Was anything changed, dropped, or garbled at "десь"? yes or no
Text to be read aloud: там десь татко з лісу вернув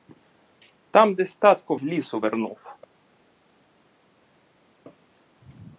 no